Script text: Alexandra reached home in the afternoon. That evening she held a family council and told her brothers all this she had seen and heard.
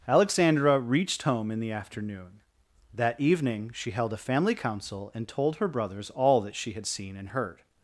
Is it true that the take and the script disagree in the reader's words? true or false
true